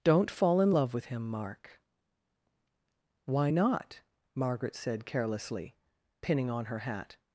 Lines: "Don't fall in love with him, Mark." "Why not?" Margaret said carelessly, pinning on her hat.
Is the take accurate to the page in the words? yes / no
yes